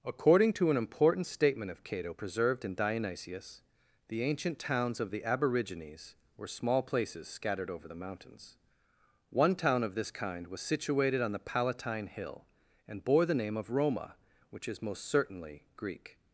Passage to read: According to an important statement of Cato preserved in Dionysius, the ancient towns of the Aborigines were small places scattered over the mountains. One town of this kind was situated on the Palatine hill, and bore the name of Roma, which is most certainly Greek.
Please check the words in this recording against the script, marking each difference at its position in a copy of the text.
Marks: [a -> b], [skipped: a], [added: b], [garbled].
According to an important statement of Cato preserved in Dionysius, the ancient towns of the Aborigines were small places scattered over the mountains. One town of this kind was situated on the Palatine hill, and bore the name of Roma, which is most certainly Greek.